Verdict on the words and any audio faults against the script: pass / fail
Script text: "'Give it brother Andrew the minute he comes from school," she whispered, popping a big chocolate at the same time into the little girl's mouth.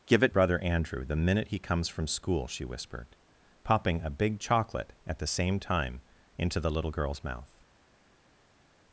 pass